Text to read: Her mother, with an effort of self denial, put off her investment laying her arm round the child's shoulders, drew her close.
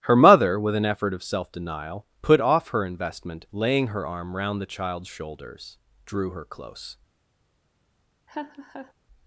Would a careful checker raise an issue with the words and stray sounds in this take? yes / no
yes